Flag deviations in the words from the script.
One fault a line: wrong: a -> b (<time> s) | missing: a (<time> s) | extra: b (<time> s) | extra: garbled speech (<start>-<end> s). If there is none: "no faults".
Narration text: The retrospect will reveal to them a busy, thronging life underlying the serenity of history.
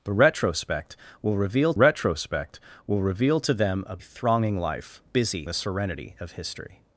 extra: retrospect will reveal (1.7 s)
missing: busy (4.0 s)
wrong: underlying -> busy (5.0 s)